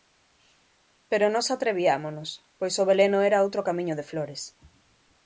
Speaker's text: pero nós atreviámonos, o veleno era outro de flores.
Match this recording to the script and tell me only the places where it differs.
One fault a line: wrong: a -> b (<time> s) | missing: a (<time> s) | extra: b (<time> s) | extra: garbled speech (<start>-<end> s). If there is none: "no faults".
extra: pois (2.6 s)
extra: camiño (3.7 s)